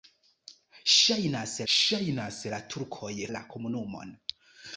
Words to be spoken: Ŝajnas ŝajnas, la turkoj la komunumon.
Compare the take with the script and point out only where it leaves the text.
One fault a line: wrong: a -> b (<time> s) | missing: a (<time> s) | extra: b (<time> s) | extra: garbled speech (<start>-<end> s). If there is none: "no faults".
no faults